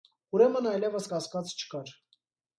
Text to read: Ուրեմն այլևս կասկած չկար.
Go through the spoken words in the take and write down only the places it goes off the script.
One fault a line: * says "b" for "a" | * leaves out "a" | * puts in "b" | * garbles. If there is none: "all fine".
all fine